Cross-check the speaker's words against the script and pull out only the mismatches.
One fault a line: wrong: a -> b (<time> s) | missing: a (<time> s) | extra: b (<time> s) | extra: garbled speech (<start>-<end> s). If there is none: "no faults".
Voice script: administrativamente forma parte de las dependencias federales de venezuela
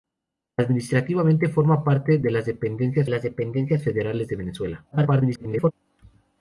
extra: las dependencias (3.1 s)
extra: garbled speech (4.9-5.7 s)